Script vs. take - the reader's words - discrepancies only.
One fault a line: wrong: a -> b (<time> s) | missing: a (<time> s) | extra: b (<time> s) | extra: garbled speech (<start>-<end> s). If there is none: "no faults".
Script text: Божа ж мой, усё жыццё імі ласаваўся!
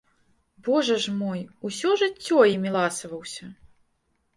no faults